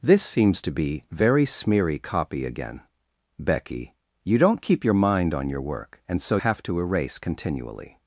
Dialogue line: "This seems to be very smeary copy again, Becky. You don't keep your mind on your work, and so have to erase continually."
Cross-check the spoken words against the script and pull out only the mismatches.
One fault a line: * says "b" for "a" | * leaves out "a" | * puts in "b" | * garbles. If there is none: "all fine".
all fine